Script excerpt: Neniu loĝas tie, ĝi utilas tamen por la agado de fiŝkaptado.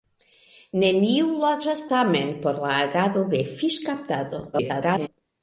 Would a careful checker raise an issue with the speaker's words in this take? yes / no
yes